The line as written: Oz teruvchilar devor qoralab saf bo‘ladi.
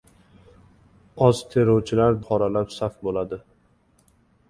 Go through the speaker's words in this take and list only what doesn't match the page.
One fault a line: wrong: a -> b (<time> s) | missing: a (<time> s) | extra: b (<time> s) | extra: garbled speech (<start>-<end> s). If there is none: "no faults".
missing: devor (2.2 s)